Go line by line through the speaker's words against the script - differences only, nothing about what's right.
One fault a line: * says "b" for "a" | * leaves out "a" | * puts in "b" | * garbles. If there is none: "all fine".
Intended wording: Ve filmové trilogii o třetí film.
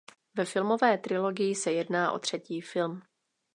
* puts in "se jedná"